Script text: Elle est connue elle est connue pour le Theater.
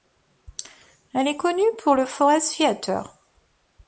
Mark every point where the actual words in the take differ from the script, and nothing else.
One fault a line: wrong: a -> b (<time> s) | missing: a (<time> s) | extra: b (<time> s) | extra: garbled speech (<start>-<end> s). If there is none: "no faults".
missing: elle est connue (1.6 s)
extra: Forest (2.1 s)